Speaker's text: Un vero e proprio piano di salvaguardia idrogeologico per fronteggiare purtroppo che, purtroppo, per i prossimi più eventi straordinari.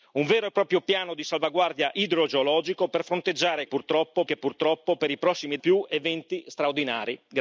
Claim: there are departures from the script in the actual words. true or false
false